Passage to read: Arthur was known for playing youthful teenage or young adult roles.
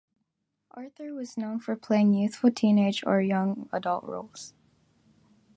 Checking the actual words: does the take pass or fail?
pass